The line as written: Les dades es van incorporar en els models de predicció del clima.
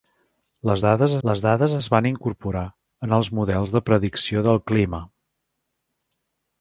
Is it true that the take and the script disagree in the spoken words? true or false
true